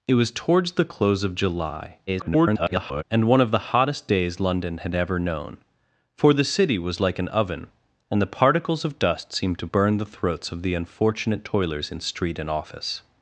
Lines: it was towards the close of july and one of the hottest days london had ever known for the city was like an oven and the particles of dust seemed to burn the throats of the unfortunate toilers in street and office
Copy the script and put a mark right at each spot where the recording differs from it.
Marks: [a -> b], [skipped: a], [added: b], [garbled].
it was towards the close of july [garbled] and one of the hottest days london had ever known for the city was like an oven and the particles of dust seemed to burn the throats of the unfortunate toilers in street and office